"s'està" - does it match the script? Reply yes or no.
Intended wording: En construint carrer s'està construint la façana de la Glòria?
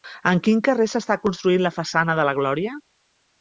yes